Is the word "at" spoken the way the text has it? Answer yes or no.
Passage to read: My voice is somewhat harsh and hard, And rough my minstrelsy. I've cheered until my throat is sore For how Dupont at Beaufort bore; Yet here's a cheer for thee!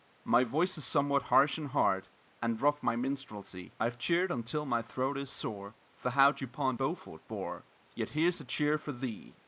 no